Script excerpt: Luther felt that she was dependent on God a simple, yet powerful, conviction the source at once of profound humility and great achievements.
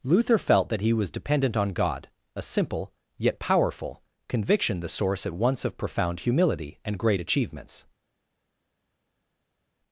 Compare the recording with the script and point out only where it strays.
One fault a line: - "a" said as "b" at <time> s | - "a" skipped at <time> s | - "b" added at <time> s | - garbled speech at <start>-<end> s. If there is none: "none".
- "she" said as "he" at 0.8 s